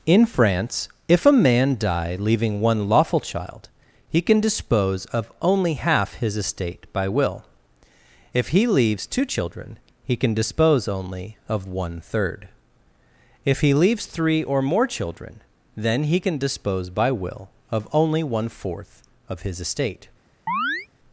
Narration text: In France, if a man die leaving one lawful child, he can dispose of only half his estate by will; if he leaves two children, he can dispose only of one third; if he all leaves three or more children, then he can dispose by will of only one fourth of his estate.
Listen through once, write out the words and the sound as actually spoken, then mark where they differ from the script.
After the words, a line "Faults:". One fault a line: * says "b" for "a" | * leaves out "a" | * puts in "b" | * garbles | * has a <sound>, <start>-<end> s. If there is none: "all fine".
In France, if a man die leaving one lawful child, he can dispose of only half his estate by will; if he leaves two children, he can dispose only of one third; if he leaves three or more children, then he can dispose by will of only one fourth of his estate.
Faults:
* leaves out "all"
* has a chirp, 20.5-20.9 s